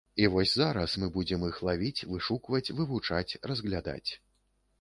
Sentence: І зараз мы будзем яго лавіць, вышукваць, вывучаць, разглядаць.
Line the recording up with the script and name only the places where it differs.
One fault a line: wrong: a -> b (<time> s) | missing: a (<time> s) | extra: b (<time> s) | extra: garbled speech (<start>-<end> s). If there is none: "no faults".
extra: вось (0.3 s)
wrong: яго -> іх (1.5 s)